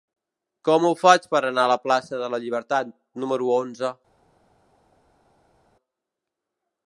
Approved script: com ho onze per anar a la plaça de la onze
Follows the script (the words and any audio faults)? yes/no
no